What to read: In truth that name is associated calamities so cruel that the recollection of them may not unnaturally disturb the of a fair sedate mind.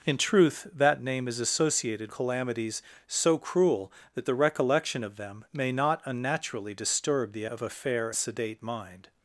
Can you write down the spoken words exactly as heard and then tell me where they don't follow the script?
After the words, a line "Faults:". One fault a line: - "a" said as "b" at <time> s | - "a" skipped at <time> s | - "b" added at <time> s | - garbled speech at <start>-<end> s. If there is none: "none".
In truth that name is associated calamities so cruel that the recollection of them may not unnaturally disturb the of a fair sedate mind.
Faults:
none